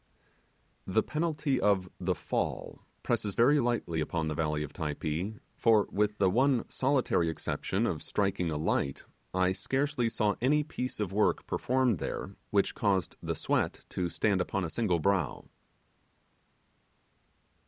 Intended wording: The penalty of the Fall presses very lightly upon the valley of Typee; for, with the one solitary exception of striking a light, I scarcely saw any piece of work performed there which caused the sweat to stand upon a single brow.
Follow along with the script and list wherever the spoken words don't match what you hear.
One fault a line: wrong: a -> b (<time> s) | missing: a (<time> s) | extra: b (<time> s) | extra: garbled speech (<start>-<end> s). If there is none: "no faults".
no faults